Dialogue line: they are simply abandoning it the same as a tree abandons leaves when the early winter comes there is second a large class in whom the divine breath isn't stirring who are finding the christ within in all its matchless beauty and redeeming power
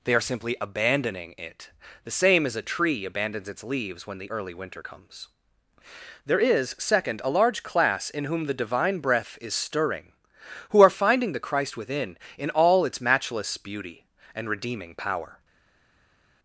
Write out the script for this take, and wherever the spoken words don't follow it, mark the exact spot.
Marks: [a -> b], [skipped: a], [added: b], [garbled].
they are simply abandoning it the same as a tree abandons [added: its] leaves when the early winter comes there is second a large class in whom the divine breath [isn't -> is] stirring who are finding the christ within in all its matchless beauty and redeeming power